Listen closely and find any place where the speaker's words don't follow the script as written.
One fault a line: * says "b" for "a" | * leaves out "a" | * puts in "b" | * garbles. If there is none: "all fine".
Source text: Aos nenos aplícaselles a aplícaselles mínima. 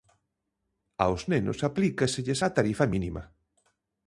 * says "tarifa" for "aplícaselles"